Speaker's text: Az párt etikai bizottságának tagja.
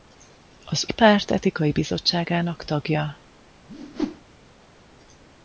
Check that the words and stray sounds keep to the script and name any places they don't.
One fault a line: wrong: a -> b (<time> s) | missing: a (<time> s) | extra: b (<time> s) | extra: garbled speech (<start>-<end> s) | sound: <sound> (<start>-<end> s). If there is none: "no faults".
sound: whoosh (3.7-4.2 s)